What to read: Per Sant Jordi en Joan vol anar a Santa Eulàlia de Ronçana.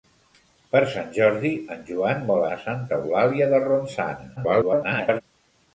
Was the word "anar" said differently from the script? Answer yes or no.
yes